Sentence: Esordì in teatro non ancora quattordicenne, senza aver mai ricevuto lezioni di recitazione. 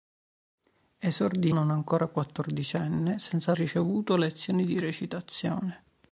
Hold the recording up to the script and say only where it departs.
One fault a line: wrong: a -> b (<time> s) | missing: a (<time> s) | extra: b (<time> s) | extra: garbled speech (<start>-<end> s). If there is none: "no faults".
missing: in teatro (1.5 s)
missing: aver mai (3.5 s)